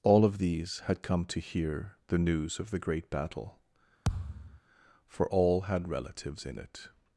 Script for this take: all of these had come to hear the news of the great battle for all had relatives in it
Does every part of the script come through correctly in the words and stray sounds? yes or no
no